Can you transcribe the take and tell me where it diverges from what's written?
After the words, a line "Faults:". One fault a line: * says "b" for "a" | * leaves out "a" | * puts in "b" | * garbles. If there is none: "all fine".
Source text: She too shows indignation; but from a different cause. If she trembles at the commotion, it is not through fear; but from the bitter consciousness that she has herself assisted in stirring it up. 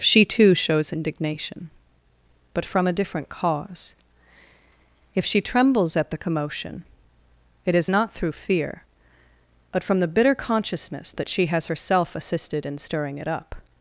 She too shows indignation; but from a different cause. If she trembles at the commotion, it is not through fear; but from the bitter consciousness that she has herself assisted in stirring it up.
Faults:
all fine